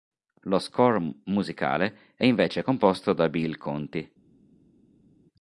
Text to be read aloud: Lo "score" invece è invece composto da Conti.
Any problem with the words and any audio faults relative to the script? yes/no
yes